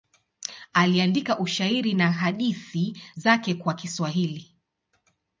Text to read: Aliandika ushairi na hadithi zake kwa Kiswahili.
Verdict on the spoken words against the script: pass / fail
pass